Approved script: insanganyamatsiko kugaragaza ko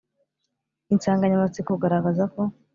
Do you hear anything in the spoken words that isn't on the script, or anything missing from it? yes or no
no